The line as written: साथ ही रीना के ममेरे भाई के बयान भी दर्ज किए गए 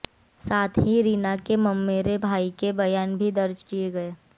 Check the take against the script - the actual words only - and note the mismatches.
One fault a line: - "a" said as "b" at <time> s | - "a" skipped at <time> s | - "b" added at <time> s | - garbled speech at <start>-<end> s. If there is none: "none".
none